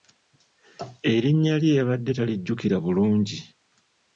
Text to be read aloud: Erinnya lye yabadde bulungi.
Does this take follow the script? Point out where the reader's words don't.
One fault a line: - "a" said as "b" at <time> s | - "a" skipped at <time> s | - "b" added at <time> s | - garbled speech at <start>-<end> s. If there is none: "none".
- "talijjukira" added at 2.2 s